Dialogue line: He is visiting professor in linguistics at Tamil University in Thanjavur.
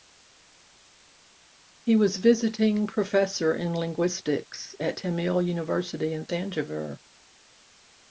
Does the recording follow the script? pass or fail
fail